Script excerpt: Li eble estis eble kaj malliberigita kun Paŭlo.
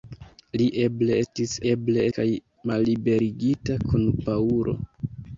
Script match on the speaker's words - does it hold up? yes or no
yes